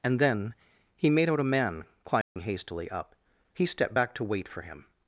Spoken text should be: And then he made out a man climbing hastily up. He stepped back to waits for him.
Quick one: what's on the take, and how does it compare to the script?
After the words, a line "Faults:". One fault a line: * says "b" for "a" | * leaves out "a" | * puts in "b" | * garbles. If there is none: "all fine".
And then he made out a man climbing hastily up. He stepped back to wait for him.
Faults:
* says "wait" for "waits"